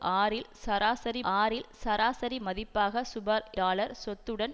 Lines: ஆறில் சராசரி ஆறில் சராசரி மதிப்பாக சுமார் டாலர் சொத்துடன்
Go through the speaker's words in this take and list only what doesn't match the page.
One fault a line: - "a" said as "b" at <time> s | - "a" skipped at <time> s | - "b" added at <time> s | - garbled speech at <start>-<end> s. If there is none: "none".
none